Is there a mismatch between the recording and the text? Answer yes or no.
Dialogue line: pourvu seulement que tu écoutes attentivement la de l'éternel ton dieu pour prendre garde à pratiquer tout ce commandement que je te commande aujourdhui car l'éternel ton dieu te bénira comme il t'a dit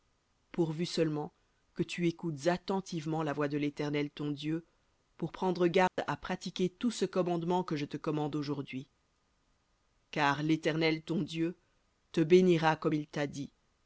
yes